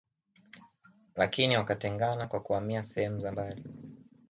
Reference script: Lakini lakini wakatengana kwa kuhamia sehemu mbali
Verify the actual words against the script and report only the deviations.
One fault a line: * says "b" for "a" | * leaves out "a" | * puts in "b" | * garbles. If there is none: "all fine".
* leaves out "lakini"
* puts in "za"